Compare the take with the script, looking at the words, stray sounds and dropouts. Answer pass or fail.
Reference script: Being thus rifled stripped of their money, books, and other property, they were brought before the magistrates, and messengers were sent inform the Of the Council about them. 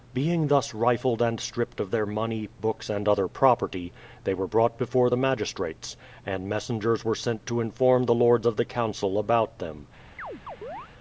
fail